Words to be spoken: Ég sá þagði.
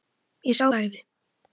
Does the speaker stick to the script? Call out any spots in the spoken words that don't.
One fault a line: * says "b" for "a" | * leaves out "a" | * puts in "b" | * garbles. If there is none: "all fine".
all fine